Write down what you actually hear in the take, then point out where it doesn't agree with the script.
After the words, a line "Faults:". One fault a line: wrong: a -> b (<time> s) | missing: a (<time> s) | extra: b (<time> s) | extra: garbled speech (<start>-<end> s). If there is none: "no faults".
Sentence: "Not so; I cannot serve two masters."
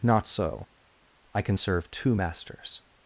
"Not so; I can serve two masters."
Faults:
wrong: cannot -> can (1.4 s)